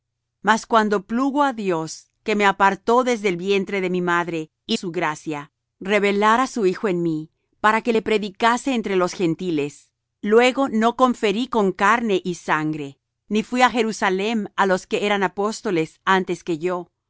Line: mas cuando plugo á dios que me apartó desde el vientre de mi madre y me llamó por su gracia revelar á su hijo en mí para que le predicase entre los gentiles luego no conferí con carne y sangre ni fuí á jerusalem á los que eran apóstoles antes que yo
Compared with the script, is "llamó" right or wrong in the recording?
wrong